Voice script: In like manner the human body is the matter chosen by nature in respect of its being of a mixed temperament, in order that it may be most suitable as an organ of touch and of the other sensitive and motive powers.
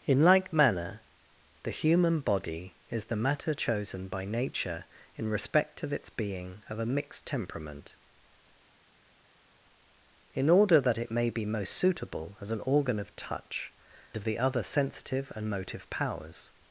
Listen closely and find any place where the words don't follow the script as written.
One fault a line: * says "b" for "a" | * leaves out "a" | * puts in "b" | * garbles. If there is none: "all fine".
* leaves out "and"